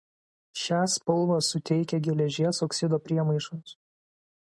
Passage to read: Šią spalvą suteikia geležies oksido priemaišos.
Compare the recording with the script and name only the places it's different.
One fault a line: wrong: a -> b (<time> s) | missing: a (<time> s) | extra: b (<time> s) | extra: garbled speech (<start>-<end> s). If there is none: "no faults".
no faults